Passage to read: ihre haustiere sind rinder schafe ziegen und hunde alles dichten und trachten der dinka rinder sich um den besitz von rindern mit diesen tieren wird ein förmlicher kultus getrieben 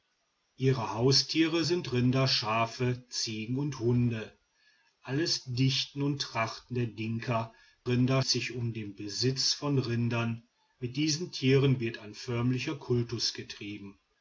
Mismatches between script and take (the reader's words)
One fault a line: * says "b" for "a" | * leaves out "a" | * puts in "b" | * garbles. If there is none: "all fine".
all fine